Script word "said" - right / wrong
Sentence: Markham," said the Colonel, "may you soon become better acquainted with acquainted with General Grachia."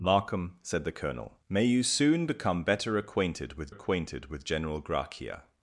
right